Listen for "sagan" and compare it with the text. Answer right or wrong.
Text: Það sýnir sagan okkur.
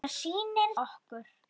wrong